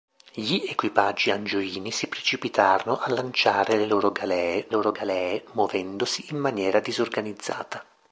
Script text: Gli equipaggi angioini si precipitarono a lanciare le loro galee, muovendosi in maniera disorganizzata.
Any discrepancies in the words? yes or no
yes